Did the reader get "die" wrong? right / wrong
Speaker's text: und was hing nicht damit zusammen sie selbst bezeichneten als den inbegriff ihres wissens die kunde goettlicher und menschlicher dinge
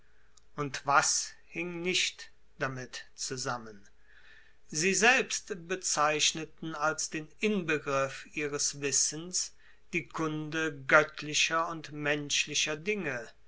right